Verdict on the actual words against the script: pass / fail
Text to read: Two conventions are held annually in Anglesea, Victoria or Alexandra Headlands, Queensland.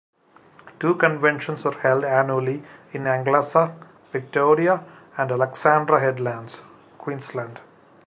fail